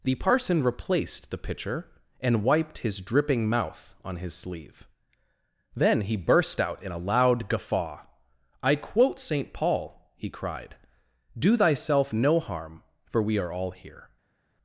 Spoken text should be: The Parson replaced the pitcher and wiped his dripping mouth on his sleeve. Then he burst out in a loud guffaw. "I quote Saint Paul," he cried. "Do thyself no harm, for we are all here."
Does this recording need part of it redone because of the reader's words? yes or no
no